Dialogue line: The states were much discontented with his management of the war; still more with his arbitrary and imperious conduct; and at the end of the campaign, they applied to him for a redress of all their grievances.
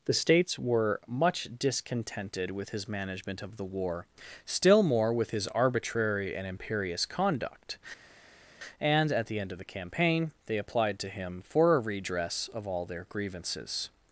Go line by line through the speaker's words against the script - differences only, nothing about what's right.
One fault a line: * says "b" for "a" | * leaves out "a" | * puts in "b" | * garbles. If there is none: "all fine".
all fine